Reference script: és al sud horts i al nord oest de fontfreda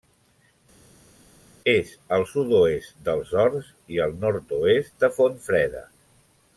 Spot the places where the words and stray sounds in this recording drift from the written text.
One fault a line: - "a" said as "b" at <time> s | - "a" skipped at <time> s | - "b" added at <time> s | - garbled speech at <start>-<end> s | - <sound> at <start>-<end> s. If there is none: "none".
- "oest dels" added at 2.6 s